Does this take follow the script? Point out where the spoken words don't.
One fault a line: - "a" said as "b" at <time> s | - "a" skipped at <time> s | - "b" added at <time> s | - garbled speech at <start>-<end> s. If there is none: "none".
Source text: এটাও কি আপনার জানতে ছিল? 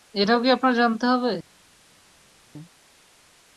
- "ছিল" said as "হবে" at 1.1 s